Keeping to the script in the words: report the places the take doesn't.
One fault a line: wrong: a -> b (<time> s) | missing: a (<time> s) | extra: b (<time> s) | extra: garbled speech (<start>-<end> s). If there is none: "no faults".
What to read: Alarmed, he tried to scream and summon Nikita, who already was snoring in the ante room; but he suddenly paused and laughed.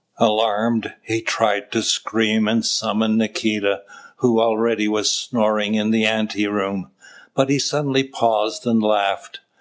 no faults